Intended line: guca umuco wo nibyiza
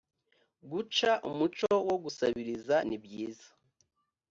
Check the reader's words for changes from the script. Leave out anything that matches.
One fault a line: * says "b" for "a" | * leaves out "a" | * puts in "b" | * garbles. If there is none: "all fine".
* puts in "gusabiriza"